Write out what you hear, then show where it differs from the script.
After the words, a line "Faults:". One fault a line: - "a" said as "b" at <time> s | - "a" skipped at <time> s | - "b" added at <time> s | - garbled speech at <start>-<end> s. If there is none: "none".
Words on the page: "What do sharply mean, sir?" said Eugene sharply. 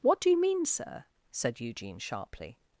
"What do you mean, sir?" said Eugene sharply.
Faults:
- "sharply" said as "you" at 0.3 s